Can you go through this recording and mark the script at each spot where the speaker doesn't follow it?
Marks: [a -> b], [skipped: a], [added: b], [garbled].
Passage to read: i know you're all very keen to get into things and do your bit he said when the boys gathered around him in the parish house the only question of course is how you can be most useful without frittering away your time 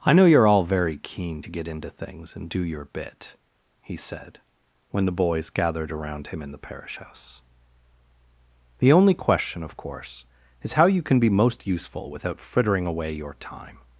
i know you're all very keen to get into things and do your bit he said when the boys gathered around him in the parish house the only question of course is how you can be most useful without frittering away your time